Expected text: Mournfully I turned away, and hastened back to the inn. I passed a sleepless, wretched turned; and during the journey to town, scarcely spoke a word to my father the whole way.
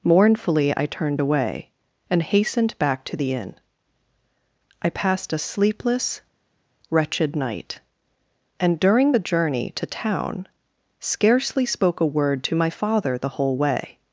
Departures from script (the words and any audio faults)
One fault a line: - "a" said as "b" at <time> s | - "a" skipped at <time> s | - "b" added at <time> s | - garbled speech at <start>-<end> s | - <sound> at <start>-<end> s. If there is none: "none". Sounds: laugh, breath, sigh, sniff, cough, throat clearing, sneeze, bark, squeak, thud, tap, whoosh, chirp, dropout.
- "turned" said as "night" at 7.4 s